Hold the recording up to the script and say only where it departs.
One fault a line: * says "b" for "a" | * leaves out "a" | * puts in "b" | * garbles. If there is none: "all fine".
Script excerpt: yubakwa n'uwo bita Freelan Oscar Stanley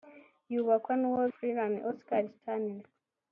* leaves out "bita"